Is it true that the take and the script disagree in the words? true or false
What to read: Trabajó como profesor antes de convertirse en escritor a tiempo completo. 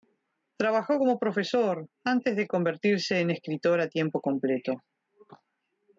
false